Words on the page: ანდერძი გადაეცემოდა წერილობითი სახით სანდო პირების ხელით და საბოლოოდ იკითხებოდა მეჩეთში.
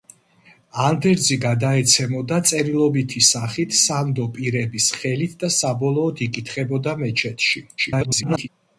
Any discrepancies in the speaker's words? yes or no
yes